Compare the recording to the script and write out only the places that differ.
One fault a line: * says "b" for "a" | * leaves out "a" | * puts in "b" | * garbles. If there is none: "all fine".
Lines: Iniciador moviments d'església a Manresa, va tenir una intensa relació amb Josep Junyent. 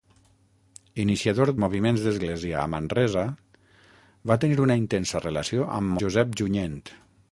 all fine